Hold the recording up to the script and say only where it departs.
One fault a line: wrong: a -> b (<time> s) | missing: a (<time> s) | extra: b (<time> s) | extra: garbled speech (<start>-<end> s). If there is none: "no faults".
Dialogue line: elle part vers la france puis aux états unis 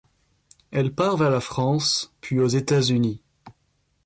no faults